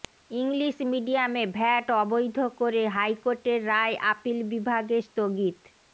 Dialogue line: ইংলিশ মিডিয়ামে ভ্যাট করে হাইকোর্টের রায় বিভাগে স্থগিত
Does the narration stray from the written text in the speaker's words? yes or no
yes